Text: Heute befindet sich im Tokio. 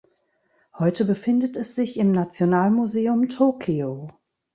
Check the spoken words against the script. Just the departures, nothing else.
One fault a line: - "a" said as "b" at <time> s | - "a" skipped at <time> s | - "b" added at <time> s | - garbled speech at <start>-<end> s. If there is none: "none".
- "es" added at 1.5 s
- "Nationalmuseum" added at 2.1 s